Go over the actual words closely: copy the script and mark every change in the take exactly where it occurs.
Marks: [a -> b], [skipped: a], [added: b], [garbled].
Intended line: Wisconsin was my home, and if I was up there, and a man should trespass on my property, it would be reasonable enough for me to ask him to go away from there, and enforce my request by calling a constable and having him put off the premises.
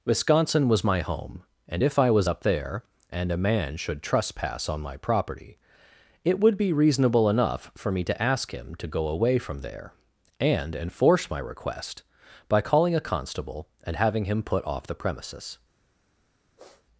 Wisconsin was my home, and if I was up there, and a man should trespass on my property, it would be reasonable enough for me to ask him to go away from there, and enforce my request by calling a constable and having him put off the premises.